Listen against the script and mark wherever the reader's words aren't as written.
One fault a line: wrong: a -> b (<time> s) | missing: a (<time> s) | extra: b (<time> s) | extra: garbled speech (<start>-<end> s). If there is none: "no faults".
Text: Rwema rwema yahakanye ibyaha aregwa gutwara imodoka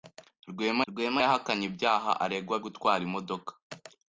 no faults